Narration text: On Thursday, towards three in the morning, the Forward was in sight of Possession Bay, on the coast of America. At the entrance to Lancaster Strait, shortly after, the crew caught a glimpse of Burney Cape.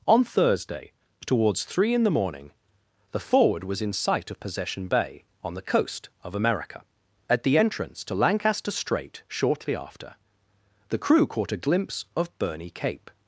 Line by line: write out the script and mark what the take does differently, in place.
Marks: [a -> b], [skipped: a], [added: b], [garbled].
On Thursday, towards three in the morning, the Forward was in sight of Possession Bay, on the coast of America. At the entrance to Lancaster Strait, shortly after, the crew caught a glimpse of Burney Cape.